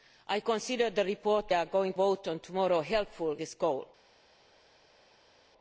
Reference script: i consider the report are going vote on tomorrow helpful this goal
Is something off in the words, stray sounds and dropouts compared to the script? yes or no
no